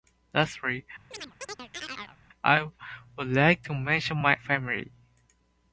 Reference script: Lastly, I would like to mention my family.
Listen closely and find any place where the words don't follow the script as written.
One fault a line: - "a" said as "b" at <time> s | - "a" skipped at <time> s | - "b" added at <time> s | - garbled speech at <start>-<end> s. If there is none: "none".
none